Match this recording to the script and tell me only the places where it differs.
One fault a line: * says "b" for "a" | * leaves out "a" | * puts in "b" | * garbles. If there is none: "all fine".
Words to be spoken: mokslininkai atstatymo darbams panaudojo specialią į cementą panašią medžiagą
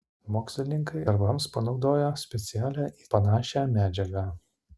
* leaves out "atstatymo"
* leaves out "cementą"